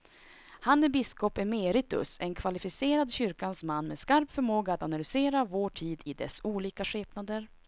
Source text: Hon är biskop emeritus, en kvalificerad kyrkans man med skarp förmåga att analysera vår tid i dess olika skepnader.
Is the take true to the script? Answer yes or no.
no